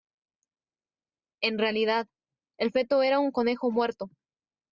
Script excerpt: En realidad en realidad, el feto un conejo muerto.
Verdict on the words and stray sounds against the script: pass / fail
fail